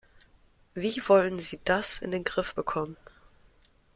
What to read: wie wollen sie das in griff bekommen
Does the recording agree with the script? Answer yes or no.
no